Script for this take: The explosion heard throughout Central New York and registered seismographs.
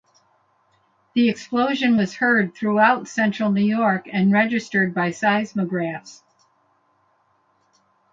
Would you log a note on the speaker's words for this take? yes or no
yes